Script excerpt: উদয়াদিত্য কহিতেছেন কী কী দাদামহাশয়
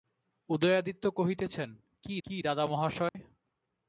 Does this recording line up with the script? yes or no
yes